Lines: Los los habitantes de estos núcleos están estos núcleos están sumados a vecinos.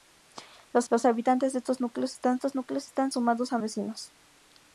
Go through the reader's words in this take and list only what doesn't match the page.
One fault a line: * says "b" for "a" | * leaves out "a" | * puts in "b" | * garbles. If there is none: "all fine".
all fine